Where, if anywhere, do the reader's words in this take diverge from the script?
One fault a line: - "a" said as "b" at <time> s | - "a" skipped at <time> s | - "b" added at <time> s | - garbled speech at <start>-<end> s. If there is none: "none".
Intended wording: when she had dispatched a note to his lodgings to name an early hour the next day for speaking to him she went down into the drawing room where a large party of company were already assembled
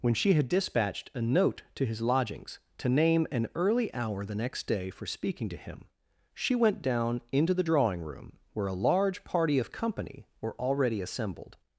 none